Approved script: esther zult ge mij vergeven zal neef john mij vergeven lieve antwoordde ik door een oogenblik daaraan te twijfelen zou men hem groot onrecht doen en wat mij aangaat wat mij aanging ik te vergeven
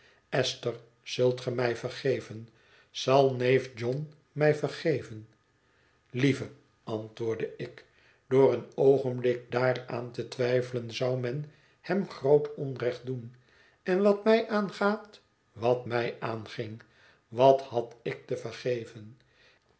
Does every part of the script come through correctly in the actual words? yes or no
no